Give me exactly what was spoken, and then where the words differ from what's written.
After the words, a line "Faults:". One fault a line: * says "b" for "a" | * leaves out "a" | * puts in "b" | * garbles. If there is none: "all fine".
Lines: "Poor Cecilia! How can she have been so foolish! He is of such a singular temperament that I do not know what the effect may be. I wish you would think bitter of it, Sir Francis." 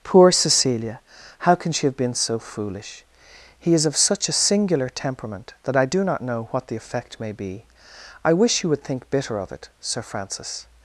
"Poor Cecilia! How can she have been so foolish! He is of such a singular temperament that I do not know what the effect may be. I wish you would think bitter of it, Sir Francis."
Faults:
all fine